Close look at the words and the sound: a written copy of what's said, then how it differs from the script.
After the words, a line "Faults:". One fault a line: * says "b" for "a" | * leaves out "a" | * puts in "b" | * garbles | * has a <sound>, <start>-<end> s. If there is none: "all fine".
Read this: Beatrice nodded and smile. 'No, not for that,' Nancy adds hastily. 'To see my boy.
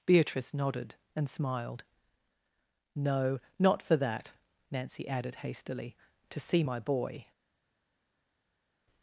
Beatrice nodded and smiled. 'No, not for that,' Nancy added hastily. 'To see my boy.
Faults:
* says "smiled" for "smile"
* says "added" for "adds"